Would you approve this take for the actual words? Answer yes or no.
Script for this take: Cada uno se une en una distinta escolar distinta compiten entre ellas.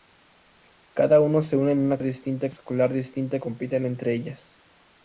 yes